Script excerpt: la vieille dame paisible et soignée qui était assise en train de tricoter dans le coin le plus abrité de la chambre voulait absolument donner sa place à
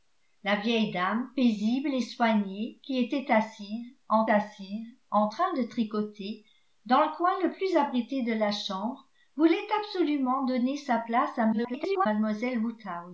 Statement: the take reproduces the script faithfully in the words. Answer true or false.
false